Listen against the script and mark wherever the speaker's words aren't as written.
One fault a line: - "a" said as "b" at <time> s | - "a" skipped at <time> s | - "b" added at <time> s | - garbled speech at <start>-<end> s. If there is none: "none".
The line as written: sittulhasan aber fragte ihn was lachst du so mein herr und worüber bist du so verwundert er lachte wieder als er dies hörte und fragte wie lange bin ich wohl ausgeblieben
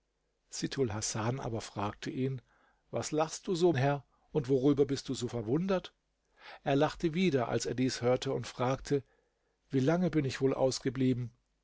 - "mein" skipped at 3.7 s